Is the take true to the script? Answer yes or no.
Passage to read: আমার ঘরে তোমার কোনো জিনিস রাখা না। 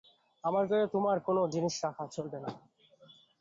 no